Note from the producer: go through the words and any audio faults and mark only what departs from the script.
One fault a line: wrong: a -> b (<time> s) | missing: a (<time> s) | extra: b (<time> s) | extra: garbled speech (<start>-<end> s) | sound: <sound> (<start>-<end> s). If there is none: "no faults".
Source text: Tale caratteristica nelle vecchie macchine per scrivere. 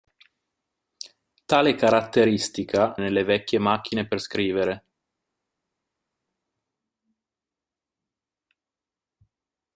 no faults